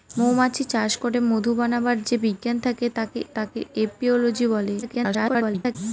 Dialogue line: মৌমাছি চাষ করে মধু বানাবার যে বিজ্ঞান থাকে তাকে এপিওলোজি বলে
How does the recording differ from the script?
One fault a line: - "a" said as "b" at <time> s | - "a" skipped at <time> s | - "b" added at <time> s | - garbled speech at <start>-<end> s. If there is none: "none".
- "তাকে" added at 3.4 s
- garbled speech at 4.8-5.8 s